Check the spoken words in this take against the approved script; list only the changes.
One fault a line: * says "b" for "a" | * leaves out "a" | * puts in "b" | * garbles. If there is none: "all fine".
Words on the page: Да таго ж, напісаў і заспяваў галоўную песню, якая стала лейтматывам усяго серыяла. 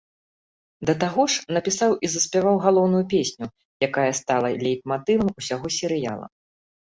all fine